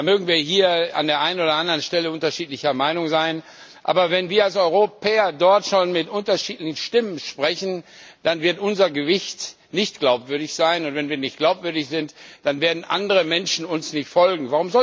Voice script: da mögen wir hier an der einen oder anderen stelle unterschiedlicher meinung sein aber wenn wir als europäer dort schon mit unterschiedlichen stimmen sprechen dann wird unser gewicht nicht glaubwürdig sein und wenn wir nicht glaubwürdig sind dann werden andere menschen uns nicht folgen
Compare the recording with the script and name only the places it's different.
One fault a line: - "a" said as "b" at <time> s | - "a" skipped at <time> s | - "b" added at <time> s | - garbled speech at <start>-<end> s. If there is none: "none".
none